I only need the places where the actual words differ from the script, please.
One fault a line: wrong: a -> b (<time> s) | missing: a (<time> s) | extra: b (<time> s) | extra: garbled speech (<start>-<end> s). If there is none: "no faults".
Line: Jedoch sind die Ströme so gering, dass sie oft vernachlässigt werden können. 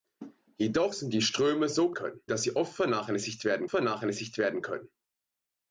wrong: gering -> können (1.9 s)
extra: vernachlässigt werden (3.7 s)